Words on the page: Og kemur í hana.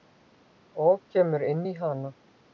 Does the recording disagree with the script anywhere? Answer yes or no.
yes